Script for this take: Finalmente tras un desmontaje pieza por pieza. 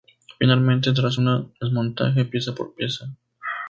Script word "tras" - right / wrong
right